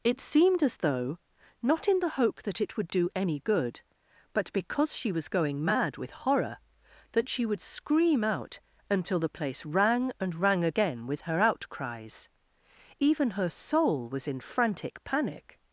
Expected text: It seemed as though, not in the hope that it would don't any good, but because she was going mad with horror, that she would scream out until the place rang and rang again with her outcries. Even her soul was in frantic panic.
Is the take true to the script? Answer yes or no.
no